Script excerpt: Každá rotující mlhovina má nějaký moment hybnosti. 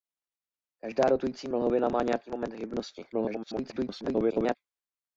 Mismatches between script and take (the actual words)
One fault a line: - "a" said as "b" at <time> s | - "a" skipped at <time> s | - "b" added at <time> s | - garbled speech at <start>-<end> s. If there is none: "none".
- garbled speech at 3.1-4.6 s